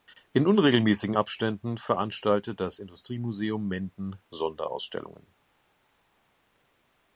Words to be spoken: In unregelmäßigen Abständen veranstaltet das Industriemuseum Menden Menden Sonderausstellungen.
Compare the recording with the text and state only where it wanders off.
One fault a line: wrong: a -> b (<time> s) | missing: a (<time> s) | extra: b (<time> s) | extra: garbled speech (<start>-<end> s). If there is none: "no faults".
missing: Menden (4.2 s)